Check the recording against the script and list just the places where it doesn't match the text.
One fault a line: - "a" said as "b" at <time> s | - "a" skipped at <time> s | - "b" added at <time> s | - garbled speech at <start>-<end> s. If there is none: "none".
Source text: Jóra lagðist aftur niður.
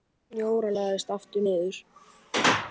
none